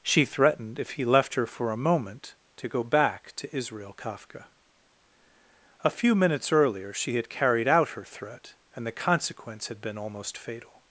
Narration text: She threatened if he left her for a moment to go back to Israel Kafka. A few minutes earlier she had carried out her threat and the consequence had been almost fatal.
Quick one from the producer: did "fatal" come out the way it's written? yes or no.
yes